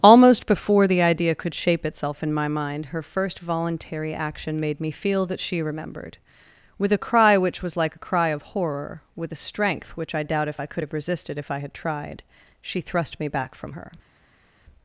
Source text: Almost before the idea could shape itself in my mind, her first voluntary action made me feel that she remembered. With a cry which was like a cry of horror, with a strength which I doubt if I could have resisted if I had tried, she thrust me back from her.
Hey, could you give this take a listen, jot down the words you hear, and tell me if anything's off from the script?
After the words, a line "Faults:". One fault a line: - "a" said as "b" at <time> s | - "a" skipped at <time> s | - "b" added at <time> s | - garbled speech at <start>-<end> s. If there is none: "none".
Almost before the idea could shape itself in my mind, her first voluntary action made me feel that she remembered. With a cry which was like a cry of horror, with a strength which I doubt if I could have resisted if I had tried, she thrust me back from her.
Faults:
none